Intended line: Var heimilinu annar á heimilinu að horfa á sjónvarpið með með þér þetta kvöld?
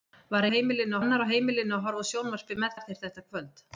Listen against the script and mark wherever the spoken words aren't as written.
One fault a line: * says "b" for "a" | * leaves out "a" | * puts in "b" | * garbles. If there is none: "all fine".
all fine